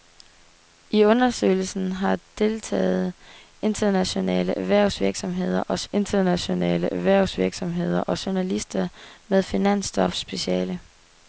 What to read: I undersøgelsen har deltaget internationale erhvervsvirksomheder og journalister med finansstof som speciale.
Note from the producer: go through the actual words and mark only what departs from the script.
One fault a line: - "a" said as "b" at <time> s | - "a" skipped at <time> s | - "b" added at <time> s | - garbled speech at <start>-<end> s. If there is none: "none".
- "internationale erhvervsvirksomheder og" added at 5.9 s
- "som" skipped at 10.2 s